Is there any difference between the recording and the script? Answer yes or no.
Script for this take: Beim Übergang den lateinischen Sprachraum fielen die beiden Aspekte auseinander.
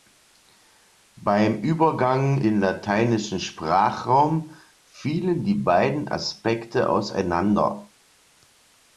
no